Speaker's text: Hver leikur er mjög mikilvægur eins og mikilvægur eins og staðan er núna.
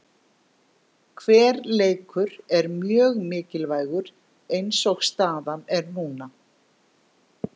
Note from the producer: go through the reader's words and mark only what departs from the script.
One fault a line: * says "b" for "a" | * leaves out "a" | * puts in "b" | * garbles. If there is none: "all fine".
* leaves out "mikilvægur eins og"